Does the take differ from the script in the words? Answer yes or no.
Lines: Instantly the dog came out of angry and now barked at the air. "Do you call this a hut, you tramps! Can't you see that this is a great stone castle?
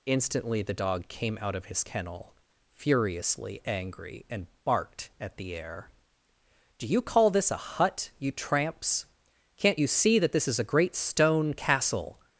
yes